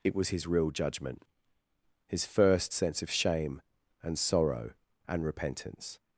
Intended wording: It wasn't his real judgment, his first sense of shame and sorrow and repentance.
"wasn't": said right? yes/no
no